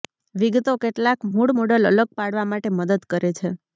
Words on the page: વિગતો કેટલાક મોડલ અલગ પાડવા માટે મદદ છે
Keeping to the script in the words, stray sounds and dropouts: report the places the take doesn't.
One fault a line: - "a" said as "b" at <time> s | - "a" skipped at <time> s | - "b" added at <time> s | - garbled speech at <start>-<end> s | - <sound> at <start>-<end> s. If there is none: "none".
- "મૂળ" added at 1.3 s
- "કરે" added at 3.1 s